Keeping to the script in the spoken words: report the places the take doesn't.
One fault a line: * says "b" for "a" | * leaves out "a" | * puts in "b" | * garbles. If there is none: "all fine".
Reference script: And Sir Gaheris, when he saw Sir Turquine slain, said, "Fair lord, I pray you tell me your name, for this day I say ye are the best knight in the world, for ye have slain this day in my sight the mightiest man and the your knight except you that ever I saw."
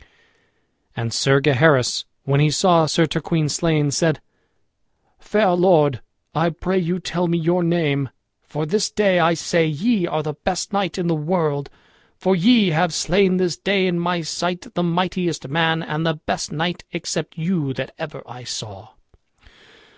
* says "best" for "your"